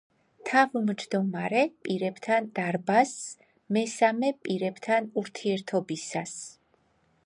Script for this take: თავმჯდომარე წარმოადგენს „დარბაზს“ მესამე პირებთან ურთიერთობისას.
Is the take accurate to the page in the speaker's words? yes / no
no